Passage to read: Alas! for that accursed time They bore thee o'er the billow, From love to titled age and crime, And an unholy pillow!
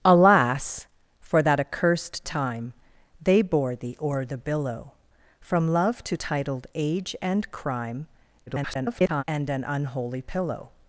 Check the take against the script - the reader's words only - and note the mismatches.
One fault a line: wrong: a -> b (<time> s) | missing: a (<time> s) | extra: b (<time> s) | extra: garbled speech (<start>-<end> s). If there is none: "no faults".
extra: garbled speech (8.5-9.2 s)